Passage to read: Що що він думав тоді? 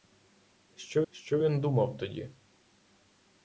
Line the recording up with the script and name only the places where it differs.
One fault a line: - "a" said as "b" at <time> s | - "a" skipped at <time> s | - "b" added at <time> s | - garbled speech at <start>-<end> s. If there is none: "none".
none